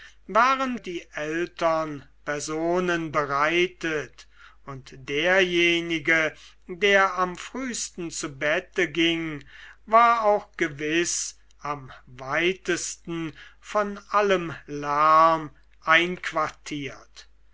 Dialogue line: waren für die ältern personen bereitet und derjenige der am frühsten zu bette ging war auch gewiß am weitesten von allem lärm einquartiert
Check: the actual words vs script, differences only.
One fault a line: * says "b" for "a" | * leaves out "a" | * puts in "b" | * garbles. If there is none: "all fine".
* leaves out "für"